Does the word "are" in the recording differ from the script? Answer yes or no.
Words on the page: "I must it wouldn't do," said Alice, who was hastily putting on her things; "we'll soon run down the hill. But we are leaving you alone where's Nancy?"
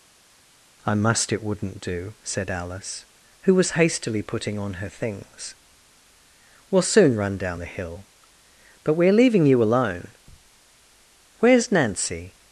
no